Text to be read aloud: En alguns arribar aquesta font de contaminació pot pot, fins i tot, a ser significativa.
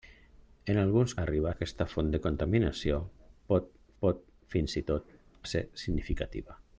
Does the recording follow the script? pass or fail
pass